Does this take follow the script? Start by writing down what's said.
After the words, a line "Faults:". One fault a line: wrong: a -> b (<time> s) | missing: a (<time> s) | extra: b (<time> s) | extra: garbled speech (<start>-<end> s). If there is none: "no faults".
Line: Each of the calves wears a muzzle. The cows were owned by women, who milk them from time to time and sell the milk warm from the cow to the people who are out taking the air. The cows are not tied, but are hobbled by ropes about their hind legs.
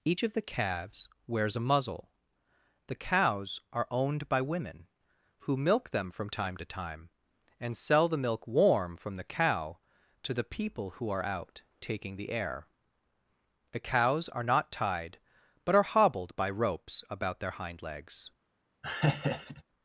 Each of the calves wears a muzzle. The cows are owned by women, who milk them from time to time and sell the milk warm from the cow to the people who are out taking the air. The cows are not tied, but are hobbled by ropes about their hind legs.
Faults:
wrong: were -> are (3.7 s)